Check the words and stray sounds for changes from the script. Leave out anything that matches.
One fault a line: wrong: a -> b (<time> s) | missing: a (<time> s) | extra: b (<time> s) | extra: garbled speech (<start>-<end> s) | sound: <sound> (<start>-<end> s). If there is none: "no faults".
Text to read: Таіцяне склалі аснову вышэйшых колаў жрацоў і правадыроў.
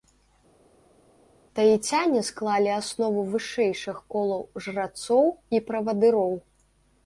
no faults